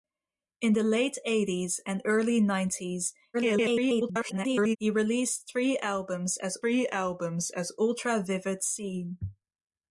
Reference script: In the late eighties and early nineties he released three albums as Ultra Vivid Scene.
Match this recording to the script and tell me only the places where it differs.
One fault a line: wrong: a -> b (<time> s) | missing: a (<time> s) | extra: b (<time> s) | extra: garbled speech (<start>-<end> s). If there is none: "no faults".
extra: garbled speech (3.3-4.8 s)
extra: three albums as (6.6 s)